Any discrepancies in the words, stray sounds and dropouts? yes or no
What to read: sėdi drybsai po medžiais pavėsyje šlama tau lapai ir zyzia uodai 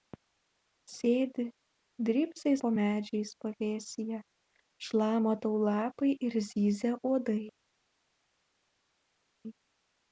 no